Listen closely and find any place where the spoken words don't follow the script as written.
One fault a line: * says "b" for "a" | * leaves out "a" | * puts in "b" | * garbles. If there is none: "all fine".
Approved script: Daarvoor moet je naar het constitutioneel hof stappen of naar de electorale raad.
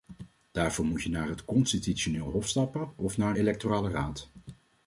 * leaves out "de"